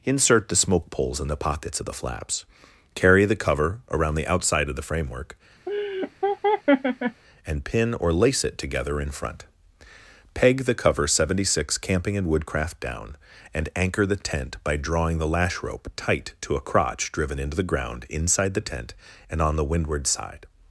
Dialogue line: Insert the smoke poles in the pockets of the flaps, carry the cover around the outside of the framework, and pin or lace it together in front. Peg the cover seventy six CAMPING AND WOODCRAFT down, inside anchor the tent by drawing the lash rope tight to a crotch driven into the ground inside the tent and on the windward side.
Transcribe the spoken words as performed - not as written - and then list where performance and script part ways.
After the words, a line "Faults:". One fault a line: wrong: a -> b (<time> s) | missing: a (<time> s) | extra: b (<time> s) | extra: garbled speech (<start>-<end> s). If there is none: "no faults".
Insert the smoke poles in the pockets of the flaps, carry the cover around the outside of the framework, and pin or lace it together in front. Peg the cover seventy six CAMPING AND WOODCRAFT down, and anchor the tent by drawing the lash rope tight to a crotch driven into the ground inside the tent and on the windward side.
Faults:
wrong: inside -> and (13.5 s)